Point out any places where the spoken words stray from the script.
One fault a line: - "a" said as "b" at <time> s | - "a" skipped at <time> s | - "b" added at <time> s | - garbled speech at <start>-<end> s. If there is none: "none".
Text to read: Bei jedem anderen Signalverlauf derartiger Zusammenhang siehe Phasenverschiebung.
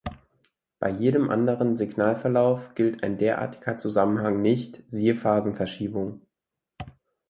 - "gilt ein" added at 2.7 s
- "nicht" added at 4.4 s